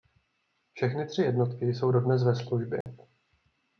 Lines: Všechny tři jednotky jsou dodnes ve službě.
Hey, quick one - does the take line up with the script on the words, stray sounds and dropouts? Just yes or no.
no